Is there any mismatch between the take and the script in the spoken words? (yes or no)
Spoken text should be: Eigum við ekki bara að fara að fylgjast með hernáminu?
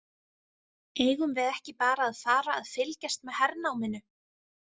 no